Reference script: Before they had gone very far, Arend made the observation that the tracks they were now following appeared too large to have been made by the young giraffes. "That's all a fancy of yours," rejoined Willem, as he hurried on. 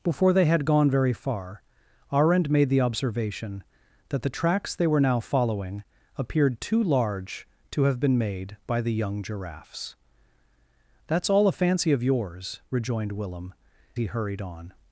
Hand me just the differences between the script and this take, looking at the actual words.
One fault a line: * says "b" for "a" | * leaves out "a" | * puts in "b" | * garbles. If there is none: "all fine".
* leaves out "as"